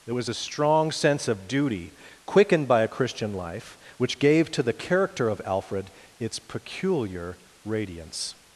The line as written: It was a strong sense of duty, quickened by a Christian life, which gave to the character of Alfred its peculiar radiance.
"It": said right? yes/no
no